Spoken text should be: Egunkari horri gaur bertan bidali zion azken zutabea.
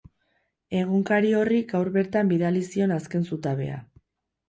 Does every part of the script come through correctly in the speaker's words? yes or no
yes